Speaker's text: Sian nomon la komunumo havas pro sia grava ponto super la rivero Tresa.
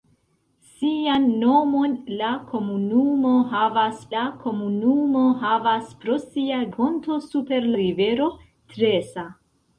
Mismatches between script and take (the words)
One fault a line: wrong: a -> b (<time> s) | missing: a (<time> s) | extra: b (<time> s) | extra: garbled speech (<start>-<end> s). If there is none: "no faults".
extra: la komunumo havas (4.1 s)
missing: grava (6.6 s)
missing: la (7.7 s)